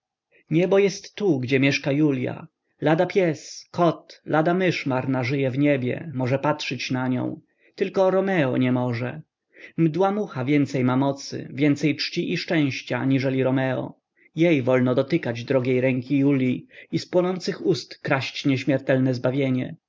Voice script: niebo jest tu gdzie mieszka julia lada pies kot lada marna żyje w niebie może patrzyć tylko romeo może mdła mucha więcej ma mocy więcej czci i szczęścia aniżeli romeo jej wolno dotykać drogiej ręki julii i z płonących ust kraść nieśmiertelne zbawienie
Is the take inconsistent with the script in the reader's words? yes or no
yes